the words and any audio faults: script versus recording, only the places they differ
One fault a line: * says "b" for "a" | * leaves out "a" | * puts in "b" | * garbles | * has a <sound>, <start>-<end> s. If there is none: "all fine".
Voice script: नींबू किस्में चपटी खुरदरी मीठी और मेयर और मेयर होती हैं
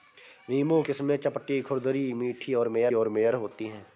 all fine